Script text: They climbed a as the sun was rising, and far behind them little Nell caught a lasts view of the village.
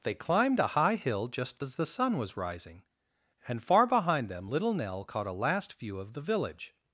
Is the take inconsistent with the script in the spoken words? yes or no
yes